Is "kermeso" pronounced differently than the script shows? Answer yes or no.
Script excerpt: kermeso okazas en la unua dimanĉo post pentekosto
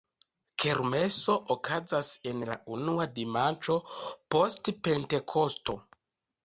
no